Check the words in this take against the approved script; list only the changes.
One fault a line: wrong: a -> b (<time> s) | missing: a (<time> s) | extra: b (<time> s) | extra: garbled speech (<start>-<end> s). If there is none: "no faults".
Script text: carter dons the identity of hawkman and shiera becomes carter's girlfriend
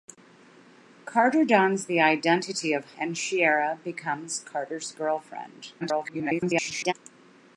missing: hawkman (2.9 s)
extra: garbled speech (5.8-6.9 s)